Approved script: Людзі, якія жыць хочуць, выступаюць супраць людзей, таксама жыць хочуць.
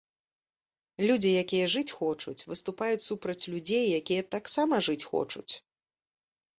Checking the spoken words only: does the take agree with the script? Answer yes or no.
no